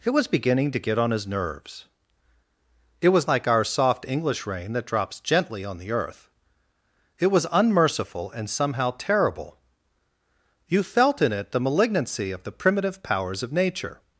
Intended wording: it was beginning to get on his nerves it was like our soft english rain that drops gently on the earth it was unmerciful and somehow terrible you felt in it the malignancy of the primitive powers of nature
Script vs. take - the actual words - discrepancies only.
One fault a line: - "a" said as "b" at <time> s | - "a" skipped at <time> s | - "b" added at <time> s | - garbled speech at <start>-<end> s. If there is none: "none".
none